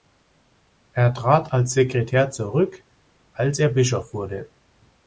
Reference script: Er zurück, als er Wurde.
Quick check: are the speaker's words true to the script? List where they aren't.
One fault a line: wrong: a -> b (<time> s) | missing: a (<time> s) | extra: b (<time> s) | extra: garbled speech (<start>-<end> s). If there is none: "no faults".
extra: trat als Sekretär (1.1 s)
extra: Bischof (3.7 s)